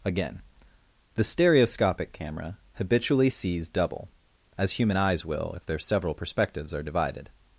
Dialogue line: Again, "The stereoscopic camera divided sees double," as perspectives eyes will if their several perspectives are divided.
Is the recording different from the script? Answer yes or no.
yes